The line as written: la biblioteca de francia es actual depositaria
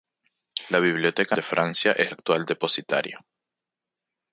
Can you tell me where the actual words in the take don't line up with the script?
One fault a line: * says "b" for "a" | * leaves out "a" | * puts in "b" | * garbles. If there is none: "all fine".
all fine